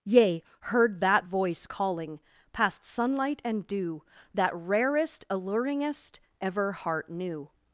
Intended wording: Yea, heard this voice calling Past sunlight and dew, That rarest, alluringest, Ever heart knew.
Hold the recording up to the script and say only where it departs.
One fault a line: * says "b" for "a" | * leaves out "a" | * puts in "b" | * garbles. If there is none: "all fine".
* says "that" for "this"